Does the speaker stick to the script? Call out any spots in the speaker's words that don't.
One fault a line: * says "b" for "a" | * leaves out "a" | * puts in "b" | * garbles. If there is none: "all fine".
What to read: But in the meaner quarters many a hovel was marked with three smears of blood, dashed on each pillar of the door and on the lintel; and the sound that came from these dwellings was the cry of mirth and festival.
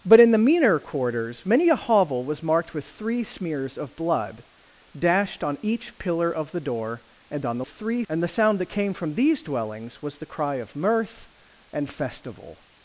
* says "three" for "lintel"